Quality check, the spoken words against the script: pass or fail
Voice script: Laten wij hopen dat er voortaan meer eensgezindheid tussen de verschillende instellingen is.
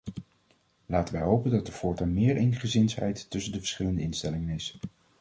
pass